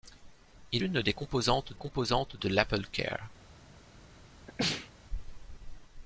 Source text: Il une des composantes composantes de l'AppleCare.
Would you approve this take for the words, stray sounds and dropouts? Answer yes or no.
no